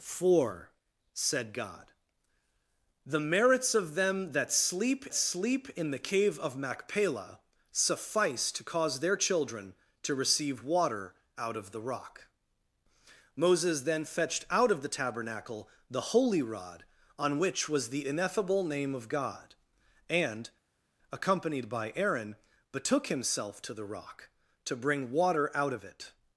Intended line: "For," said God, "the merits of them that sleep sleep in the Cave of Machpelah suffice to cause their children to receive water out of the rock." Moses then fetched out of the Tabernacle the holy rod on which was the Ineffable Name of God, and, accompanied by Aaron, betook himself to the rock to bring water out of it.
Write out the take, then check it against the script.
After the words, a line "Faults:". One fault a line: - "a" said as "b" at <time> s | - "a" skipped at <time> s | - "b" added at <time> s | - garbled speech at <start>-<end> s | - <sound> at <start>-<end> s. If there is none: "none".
"For," said God, "the merits of them that sleep sleep in the Cave of Machpelah suffice to cause their children to receive water out of the rock." Moses then fetched out of the Tabernacle the holy rod on which was the Ineffable Name of God, and, accompanied by Aaron, betook himself to the rock to bring water out of it.
Faults:
none